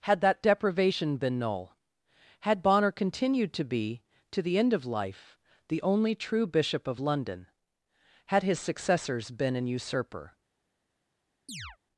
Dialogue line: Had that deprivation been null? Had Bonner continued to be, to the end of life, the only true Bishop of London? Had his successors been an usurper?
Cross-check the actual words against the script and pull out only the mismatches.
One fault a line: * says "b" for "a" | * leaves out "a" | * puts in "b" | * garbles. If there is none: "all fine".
all fine